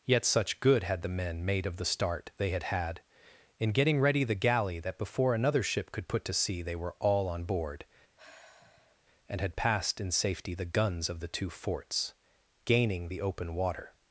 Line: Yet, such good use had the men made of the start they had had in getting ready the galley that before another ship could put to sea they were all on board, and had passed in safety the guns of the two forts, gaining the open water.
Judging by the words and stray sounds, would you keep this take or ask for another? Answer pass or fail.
fail